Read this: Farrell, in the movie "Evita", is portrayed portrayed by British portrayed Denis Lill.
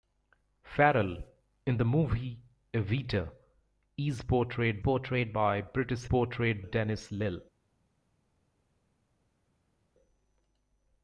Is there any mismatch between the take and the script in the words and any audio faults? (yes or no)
no